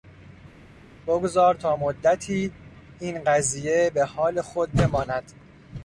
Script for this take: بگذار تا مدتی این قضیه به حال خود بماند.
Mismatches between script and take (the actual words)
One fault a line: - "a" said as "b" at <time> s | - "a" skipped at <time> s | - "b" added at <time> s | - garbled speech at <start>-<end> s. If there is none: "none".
none